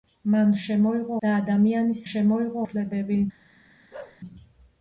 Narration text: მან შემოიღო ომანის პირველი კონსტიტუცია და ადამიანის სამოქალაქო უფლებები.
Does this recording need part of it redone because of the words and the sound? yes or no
yes